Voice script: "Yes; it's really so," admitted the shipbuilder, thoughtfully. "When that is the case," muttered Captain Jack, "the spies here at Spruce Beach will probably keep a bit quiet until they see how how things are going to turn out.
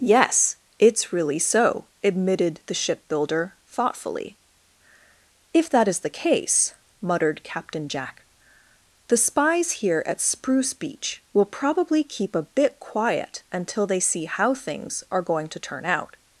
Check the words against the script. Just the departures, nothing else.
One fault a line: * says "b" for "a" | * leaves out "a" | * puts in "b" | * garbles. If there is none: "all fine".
* says "If" for "When"
* leaves out "how"